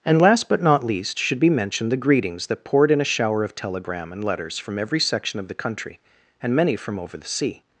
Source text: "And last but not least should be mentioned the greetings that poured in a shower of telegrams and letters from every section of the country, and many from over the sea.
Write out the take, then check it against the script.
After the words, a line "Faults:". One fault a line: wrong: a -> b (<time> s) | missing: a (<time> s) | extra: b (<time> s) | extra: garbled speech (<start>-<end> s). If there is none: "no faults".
"And last but not least should be mentioned the greetings that poured in a shower of telegram and letters from every section of the country, and many from over the sea.
Faults:
wrong: telegrams -> telegram (3.5 s)